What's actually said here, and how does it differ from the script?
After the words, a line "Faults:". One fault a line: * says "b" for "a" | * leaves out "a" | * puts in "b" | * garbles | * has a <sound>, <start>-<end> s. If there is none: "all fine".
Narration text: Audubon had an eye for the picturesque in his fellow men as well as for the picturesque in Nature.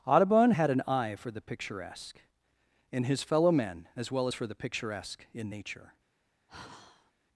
Audubon had an eye for the picturesque in his fellow men as well as for the picturesque in Nature.
Faults:
* has a sigh, 6.5-7.1 s